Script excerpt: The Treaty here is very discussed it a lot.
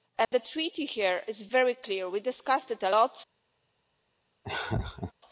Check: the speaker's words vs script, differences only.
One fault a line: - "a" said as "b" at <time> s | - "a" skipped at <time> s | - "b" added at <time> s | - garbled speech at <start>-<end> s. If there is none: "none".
- "clear we" added at 1.7 s